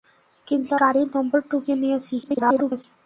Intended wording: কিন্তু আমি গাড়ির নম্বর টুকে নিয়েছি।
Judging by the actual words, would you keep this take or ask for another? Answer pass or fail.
fail